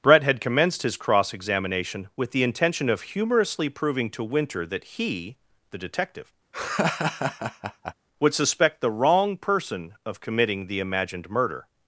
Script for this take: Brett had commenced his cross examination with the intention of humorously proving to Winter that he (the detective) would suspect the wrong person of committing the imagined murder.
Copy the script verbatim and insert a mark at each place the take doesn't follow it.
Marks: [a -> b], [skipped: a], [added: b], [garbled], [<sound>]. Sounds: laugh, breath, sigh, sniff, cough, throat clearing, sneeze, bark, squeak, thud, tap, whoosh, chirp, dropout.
Brett had commenced his cross examination with the intention of humorously proving to Winter that he (the detective) [laugh] would suspect the wrong person of committing the imagined murder.